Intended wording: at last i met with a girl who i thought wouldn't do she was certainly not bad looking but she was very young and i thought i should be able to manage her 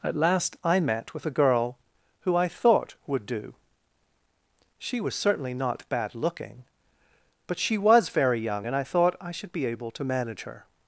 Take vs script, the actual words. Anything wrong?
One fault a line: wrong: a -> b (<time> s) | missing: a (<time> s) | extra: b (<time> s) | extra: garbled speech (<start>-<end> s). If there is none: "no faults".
wrong: wouldn't -> would (3.0 s)